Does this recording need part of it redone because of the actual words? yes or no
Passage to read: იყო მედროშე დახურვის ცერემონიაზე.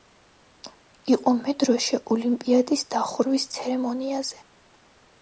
yes